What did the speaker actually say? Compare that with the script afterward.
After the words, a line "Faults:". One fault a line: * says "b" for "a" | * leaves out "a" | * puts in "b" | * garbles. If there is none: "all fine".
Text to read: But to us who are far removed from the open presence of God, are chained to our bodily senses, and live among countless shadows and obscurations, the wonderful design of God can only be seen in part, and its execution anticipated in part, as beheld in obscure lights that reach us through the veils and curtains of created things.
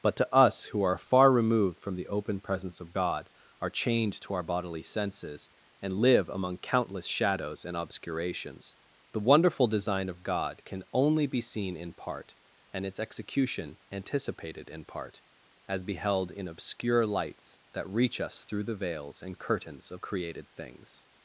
But to us who are far removed from the open presence of God, are chained to our bodily senses, and live among countless shadows and obscurations, the wonderful design of God can only be seen in part, and its execution anticipated in part, as beheld in obscure lights that reach us through the veils and curtains of created things.
Faults:
all fine